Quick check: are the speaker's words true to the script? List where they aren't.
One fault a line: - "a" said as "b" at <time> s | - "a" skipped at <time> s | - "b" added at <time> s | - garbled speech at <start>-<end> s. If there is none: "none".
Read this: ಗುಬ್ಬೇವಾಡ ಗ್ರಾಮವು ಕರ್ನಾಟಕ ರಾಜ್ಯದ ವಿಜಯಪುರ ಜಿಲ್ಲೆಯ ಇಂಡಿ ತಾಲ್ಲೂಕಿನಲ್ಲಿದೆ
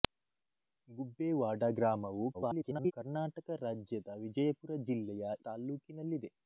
- garbled speech at 2.3-2.9 s
- "ಇಂಡಿ" skipped at 5.4 s